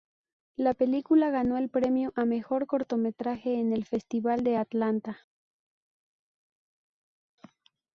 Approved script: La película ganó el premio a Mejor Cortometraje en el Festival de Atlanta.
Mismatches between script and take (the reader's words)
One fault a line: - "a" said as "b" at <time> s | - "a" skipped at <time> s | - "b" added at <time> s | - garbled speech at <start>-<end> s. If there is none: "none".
none